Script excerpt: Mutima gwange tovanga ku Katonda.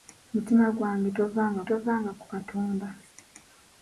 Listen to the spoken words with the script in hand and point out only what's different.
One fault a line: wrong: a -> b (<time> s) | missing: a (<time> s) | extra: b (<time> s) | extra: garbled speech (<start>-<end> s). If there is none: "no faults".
extra: tovanga (1.7 s)